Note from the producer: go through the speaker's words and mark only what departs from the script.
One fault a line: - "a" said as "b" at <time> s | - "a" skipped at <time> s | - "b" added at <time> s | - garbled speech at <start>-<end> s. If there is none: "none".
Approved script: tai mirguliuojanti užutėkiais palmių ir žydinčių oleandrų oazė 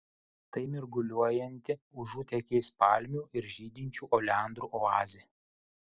none